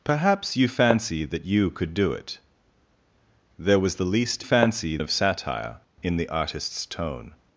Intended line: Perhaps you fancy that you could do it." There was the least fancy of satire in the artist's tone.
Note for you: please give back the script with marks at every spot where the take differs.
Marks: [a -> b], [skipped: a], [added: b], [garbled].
Perhaps you fancy that you could do it." There was the least fancy of satire in the artist's tone.